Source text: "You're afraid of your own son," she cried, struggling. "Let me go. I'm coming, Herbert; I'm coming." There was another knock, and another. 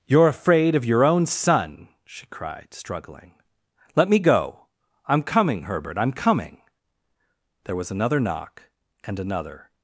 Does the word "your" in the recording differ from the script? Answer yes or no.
no